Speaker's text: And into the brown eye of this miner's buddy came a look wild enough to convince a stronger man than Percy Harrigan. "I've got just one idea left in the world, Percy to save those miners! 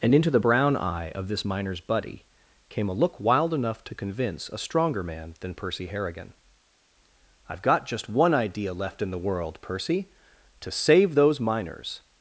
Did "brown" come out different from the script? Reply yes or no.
no